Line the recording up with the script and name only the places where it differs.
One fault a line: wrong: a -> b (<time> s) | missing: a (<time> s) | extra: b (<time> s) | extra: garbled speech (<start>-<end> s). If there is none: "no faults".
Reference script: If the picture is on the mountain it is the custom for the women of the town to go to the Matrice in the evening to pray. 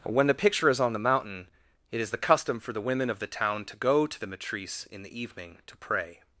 wrong: If -> When (0.0 s)